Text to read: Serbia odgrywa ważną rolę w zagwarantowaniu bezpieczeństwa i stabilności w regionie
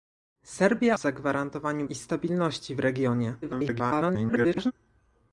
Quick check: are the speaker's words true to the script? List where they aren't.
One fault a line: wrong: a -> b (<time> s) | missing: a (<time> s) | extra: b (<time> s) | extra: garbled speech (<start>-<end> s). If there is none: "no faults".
missing: odgrywa ważną rolę (1.0 s)
missing: bezpieczeństwa (1.9 s)
extra: garbled speech (3.4-4.7 s)